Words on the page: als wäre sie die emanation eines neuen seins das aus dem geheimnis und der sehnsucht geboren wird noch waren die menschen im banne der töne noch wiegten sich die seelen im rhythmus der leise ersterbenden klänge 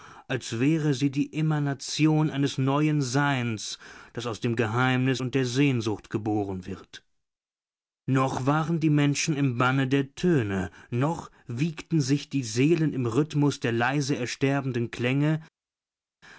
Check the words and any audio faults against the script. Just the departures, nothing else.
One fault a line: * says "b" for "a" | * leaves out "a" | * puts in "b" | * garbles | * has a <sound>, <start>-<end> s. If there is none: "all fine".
all fine